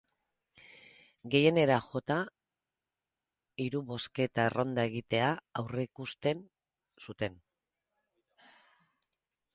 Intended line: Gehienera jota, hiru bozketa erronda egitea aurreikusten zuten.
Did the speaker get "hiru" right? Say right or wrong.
right